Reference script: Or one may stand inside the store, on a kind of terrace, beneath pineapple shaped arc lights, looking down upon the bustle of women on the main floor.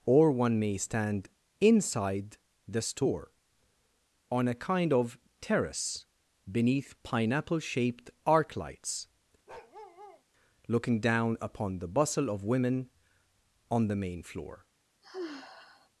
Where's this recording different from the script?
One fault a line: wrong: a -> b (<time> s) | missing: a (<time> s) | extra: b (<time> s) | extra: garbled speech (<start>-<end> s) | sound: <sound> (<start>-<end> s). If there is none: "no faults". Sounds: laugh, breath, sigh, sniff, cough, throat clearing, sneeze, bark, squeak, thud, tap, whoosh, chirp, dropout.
sound: bark (9.5-10.2 s)
sound: sigh (15.0-15.9 s)